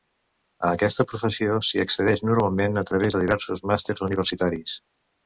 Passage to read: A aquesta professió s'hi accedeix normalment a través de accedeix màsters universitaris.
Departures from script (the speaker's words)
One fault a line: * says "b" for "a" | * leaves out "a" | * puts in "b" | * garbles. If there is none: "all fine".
* says "diversos" for "accedeix"